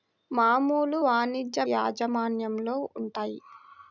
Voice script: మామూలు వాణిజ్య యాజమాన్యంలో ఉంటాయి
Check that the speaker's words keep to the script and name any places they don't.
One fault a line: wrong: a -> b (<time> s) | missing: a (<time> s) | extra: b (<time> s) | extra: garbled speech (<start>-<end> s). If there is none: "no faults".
no faults